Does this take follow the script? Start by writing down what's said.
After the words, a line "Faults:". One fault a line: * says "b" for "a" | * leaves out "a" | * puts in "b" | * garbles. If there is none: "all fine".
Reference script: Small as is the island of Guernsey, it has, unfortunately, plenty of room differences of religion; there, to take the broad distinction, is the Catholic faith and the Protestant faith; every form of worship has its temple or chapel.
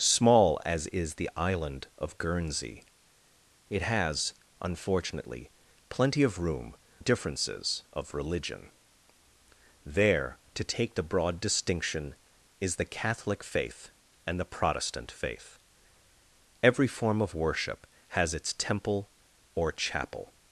Small as is the island of Guernsey, it has, unfortunately, plenty of room differences of religion; there, to take the broad distinction, is the Catholic faith and the Protestant faith; every form of worship has its temple or chapel.
Faults:
all fine